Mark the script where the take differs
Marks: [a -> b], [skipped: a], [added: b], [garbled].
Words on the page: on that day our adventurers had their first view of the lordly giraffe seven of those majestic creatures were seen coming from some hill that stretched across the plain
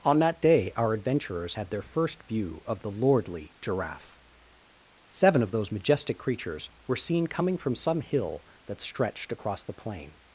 on that day our adventurers had their first view of the lordly giraffe seven of those majestic creatures were seen coming from some hill that stretched across the plain